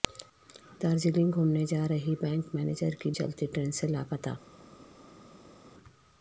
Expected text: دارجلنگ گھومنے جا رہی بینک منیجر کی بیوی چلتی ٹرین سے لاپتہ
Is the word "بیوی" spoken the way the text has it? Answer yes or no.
no